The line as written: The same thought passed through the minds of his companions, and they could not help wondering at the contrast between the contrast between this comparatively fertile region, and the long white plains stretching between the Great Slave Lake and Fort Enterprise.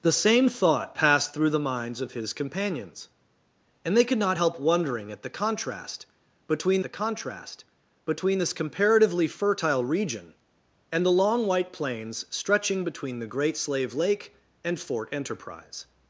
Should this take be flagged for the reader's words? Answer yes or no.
no